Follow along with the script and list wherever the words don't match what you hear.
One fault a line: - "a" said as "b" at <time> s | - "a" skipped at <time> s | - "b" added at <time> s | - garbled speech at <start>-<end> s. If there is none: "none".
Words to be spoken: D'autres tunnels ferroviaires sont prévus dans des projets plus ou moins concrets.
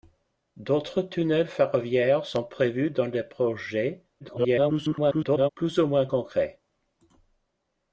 - garbled speech at 4.2-5.5 s